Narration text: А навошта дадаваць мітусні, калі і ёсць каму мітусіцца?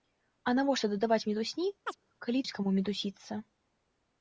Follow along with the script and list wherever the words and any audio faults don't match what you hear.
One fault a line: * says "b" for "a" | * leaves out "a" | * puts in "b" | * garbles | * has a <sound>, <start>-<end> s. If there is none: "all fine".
* has a chirp, 1.9-2.0 s